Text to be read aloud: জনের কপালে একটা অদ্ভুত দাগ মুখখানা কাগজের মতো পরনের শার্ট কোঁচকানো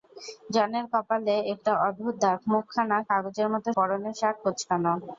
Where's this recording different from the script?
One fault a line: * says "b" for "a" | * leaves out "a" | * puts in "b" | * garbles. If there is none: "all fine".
all fine